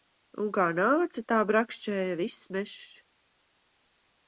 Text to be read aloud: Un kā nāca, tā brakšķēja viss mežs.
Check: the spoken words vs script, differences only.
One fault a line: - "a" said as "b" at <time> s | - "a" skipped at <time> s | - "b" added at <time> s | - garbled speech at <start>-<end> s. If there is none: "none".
none